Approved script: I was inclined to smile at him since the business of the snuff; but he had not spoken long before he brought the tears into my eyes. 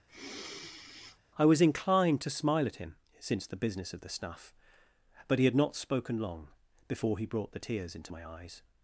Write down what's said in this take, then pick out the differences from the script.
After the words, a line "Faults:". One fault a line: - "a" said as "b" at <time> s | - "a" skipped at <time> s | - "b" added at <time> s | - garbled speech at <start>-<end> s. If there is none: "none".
I was inclined to smile at him since the business of the snuff; but he had not spoken long before he brought the tears into my eyes.
Faults:
none